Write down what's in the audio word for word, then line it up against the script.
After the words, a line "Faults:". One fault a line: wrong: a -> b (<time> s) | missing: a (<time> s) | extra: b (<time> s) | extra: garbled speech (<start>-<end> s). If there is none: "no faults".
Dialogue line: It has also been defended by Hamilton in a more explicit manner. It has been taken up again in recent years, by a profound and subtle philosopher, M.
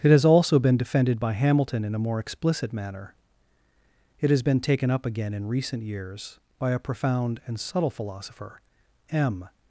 It has also been defended by Hamilton in a more explicit manner. It has been taken up again in recent years, by a profound and subtle philosopher, M.
Faults:
no faults